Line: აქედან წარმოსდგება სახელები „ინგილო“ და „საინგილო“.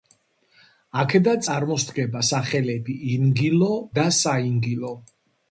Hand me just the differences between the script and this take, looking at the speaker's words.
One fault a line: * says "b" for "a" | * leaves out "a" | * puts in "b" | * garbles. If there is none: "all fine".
all fine